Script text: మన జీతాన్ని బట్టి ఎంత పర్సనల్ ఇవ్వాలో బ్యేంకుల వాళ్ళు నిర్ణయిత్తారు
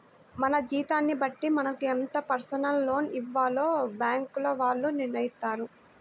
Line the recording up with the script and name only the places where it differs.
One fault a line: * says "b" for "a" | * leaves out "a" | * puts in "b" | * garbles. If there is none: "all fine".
* puts in "మనకు"
* puts in "లోన్"